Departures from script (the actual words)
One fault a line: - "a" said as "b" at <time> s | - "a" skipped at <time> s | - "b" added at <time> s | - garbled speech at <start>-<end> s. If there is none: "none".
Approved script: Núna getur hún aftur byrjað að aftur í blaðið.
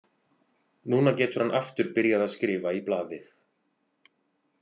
- "hún" said as "hann" at 1.4 s
- "aftur" said as "skrifa" at 2.4 s